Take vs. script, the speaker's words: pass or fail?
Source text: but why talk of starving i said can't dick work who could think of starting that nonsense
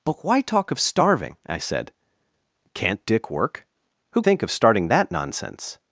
fail